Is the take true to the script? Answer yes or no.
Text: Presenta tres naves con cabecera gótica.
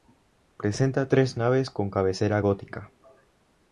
yes